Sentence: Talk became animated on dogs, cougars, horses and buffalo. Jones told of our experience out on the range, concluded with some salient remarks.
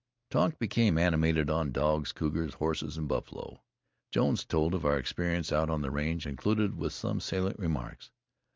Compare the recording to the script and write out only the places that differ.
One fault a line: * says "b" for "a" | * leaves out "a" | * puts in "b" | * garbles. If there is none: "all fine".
all fine